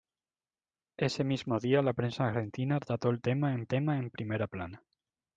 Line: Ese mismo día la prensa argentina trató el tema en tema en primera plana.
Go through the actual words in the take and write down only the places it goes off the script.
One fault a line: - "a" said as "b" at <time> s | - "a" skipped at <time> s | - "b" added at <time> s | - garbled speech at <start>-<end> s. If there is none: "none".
none